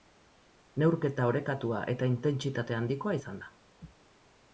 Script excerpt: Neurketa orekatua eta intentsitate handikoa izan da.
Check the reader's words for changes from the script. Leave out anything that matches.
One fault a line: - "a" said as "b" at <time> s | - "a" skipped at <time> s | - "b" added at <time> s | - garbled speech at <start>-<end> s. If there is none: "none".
none